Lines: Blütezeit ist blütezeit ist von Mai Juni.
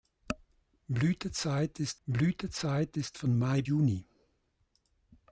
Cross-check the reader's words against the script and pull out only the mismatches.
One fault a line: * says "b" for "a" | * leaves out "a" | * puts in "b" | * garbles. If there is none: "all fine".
all fine